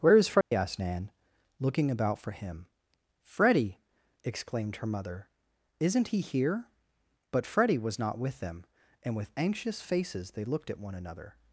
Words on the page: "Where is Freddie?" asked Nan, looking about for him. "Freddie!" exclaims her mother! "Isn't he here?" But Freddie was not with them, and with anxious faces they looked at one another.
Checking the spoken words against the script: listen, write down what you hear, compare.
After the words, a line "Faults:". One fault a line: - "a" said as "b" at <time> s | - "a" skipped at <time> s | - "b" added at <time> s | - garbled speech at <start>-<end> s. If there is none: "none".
"Where is Freddie?" asked Nan, looking about for him. "Freddie!" exclaimed her mother! "Isn't he here?" But Freddie was not with them, and with anxious faces they looked at one another.
Faults:
- "exclaims" said as "exclaimed" at 4.2 s